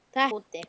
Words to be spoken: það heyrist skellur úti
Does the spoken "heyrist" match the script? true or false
false